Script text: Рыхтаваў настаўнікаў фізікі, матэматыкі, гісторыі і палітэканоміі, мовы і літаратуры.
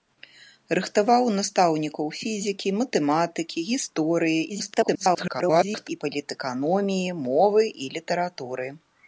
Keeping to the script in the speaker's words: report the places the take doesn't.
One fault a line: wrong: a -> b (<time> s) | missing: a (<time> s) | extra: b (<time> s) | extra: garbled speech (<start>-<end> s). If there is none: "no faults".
extra: garbled speech (4.5-5.9 s)